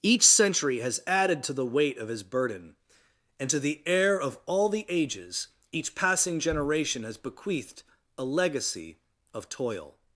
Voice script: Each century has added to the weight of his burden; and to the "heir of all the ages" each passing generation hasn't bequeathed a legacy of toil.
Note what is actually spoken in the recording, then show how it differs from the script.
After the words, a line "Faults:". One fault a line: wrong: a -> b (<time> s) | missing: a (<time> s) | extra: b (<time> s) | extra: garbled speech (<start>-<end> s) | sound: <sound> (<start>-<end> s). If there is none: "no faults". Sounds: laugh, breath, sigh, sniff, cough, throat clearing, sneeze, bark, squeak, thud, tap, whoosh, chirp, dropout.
Each century has added to the weight of his burden; and to the "heir of all the ages" each passing generation has bequeathed a legacy of toil.
Faults:
wrong: hasn't -> has (7.0 s)